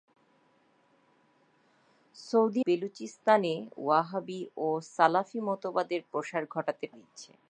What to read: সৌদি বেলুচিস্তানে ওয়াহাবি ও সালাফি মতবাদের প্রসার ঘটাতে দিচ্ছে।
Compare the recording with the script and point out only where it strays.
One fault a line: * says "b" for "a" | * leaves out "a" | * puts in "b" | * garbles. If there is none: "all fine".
all fine